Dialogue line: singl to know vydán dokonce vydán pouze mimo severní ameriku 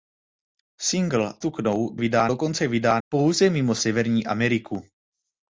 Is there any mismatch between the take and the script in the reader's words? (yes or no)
no